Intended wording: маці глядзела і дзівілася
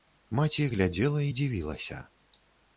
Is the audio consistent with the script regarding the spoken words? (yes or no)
yes